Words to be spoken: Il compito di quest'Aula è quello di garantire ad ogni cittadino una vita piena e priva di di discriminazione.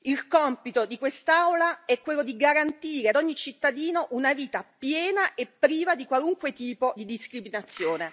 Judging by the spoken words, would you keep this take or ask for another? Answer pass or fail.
fail